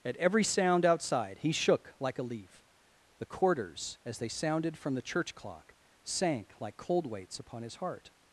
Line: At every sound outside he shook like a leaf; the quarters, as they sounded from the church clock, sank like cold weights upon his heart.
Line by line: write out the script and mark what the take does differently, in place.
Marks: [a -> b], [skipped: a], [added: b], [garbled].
At every sound outside he shook like a leaf; the quarters, as they sounded from the church clock, sank like cold weights upon his heart.